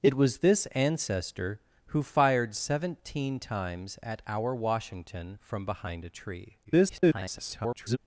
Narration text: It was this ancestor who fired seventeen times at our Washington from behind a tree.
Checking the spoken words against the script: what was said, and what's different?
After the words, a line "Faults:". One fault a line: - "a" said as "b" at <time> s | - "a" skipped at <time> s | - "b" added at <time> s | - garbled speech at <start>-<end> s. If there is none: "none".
It was this ancestor who fired seventeen times at our Washington from behind a tree. [garbled]
Faults:
- garbled speech at 6.6-8.0 s